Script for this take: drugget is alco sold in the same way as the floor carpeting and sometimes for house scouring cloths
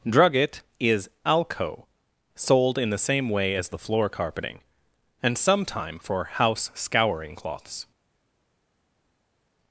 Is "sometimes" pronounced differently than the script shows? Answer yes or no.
yes